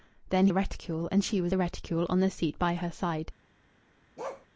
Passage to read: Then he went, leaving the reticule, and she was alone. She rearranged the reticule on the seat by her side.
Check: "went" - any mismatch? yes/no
yes